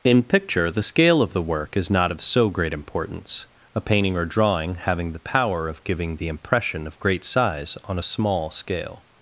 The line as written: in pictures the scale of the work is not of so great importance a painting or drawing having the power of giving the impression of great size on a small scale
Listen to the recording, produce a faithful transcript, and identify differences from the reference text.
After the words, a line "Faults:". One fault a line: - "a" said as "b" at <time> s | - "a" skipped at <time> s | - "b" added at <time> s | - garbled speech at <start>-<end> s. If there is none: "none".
in picture the scale of the work is not of so great importance a painting or drawing having the power of giving the impression of great size on a small scale
Faults:
- "pictures" said as "picture" at 0.2 s